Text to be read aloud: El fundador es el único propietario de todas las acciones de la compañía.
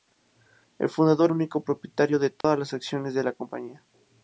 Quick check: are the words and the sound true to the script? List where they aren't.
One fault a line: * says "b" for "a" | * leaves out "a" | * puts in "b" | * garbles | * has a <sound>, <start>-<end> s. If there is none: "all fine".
* leaves out "es el"
* has a dropout, 2.4-2.4 s